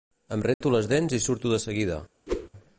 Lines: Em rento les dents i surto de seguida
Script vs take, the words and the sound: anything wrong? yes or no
yes